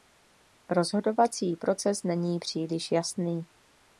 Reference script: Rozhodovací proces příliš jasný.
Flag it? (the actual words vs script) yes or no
yes